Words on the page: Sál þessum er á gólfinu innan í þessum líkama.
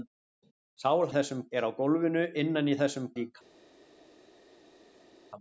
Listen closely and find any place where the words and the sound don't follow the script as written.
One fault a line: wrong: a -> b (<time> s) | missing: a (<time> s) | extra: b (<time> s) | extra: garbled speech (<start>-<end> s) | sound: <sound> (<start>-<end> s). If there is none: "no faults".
no faults